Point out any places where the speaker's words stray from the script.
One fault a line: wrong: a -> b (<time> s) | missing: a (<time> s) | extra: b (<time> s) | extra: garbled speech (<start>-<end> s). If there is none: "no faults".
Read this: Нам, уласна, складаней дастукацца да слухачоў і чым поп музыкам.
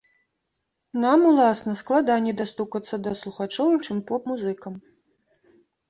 no faults